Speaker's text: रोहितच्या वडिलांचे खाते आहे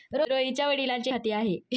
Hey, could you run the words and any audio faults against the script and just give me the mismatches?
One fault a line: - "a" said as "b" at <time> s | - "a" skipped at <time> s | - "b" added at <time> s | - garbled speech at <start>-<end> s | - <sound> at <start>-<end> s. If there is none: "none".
none